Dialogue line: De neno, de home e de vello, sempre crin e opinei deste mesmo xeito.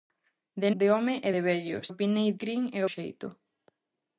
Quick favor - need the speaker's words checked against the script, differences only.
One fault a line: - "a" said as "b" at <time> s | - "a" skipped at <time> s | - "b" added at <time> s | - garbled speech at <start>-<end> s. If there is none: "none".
- "neno" skipped at 0.7 s
- "sempre" said as "opinei" at 1.9 s
- "opinei deste mesmo" skipped at 2.8 s